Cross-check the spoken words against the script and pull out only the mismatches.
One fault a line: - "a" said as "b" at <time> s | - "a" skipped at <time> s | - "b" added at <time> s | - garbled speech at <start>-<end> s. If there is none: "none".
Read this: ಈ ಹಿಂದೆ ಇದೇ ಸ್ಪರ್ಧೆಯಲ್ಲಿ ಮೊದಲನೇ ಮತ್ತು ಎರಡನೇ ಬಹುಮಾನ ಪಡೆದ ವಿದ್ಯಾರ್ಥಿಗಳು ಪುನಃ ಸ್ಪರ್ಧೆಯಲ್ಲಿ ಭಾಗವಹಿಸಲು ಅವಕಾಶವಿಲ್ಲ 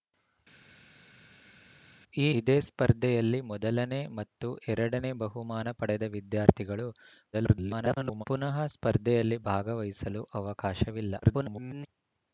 - "ಹಿಂದೆ" skipped at 2.3 s
- garbled speech at 7.3-8.2 s
- garbled speech at 11.2-11.9 s